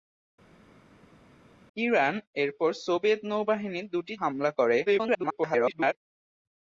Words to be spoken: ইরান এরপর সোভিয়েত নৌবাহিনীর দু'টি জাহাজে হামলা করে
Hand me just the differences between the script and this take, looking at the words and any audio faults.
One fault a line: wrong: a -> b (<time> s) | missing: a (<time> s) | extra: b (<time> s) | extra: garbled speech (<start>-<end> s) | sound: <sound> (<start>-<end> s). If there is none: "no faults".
missing: জাহাজে (4.1 s)
extra: garbled speech (4.9-5.9 s)